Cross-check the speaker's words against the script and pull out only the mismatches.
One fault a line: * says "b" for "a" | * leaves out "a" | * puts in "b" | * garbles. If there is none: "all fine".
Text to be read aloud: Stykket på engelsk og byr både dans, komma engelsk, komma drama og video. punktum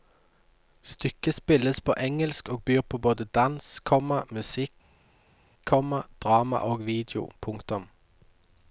* puts in "spilles"
* puts in "på"
* says "musikk" for "engelsk"